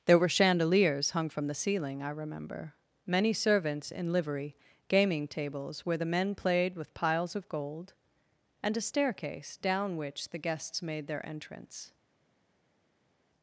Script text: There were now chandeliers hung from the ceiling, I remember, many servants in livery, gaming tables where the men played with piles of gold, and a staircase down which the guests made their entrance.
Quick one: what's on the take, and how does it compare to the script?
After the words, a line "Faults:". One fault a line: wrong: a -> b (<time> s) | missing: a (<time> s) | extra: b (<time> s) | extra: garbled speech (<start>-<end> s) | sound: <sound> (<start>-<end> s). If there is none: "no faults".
There were chandeliers hung from the ceiling, I remember, many servants in livery, gaming tables where the men played with piles of gold, and a staircase down which the guests made their entrance.
Faults:
missing: now (0.3 s)